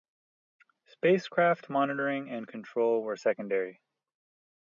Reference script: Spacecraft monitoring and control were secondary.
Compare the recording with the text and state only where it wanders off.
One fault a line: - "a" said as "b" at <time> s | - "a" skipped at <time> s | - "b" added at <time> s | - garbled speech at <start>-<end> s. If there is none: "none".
none